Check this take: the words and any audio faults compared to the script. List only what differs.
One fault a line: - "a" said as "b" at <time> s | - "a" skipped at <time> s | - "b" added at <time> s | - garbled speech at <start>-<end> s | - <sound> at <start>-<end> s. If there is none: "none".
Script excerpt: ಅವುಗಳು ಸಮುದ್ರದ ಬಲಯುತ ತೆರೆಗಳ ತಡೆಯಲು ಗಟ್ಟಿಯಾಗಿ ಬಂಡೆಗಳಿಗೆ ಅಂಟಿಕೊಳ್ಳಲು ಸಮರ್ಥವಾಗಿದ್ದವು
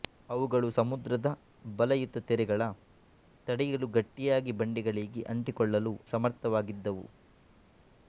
none